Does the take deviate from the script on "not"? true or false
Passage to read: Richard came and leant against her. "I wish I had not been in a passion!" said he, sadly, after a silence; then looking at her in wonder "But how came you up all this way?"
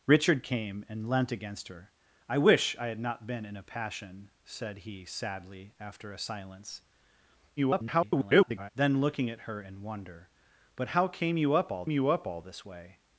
false